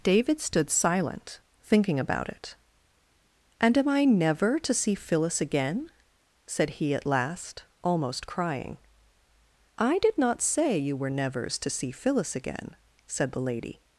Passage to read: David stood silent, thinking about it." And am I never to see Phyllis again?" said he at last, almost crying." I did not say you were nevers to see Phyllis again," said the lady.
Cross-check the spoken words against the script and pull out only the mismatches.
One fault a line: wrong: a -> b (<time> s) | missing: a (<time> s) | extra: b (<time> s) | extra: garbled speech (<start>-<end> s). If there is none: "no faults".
no faults